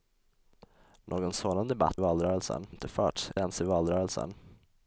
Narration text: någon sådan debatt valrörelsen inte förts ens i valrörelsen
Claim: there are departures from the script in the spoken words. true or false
false